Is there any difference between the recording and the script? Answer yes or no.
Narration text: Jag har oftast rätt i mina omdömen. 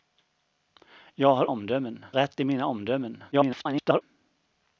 yes